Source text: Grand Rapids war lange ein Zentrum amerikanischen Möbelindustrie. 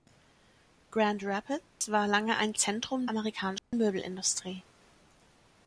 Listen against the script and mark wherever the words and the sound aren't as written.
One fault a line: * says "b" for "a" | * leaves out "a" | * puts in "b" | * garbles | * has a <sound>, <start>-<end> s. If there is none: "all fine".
* has a dropout, 1.7-1.8 s
* has a dropout, 3.6-3.7 s